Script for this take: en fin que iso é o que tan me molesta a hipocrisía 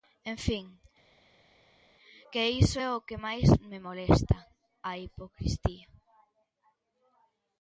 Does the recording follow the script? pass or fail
fail